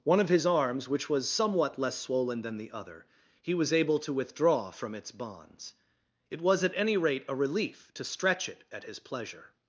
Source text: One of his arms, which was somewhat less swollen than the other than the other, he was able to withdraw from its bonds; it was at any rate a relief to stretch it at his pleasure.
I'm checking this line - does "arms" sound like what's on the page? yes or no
yes